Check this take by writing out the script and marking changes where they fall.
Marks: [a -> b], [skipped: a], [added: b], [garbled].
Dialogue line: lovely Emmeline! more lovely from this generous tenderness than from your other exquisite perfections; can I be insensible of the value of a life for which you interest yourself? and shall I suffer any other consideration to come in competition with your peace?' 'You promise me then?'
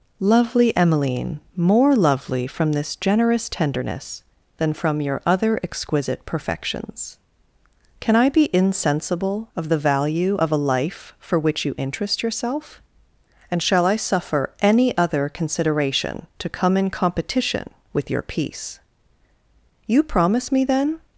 lovely Emmeline! more lovely from this generous tenderness than from your other exquisite perfections; can I be insensible of the value of a life for which you interest yourself? and shall I suffer any other consideration to come in competition with your peace?' 'You promise me then?'